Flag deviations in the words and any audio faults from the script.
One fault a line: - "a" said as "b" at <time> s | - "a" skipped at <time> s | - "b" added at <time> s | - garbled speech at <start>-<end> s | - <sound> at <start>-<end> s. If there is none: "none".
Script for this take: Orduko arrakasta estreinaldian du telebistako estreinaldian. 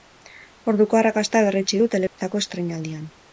- "estreinaldian" said as "berretsi" at 1.5 s
- dropout at 2.1-2.2 s